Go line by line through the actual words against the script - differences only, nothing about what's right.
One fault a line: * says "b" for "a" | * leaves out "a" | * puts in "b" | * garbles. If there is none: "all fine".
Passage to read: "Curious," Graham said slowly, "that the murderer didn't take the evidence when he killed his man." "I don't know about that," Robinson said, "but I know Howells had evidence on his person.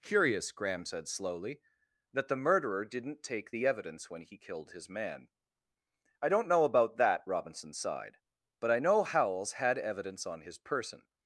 * says "sighed" for "said"